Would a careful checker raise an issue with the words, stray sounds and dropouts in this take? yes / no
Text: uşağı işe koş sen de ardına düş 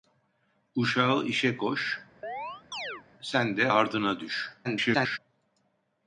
yes